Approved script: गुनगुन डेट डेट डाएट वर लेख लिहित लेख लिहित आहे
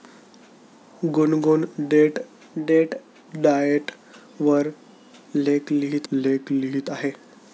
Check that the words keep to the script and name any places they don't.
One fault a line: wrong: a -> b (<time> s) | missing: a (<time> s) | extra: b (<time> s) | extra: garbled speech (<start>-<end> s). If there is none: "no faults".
no faults